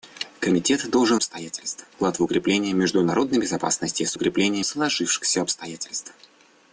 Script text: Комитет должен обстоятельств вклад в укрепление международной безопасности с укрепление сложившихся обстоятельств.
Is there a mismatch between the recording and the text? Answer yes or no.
no